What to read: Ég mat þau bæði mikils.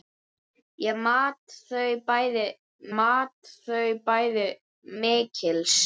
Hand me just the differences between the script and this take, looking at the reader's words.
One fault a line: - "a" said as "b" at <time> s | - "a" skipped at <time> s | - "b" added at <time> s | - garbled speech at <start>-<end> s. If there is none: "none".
- "mat þau bæði" added at 3.0 s